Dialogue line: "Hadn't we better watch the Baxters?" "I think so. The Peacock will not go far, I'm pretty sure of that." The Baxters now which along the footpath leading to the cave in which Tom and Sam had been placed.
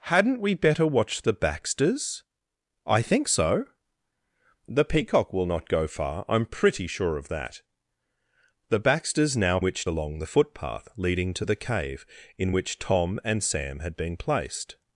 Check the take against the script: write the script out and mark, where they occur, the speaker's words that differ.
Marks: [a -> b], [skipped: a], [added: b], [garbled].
"Hadn't we better watch the Baxters?" "I think so. The Peacock will not go far, I'm pretty sure of that." The Baxters now which along the footpath leading to the cave in which Tom and Sam had been placed.